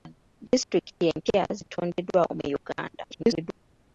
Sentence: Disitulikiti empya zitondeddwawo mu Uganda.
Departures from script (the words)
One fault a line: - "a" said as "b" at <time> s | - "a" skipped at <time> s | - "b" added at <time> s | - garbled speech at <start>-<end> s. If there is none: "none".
- garbled speech at 3.1-3.5 s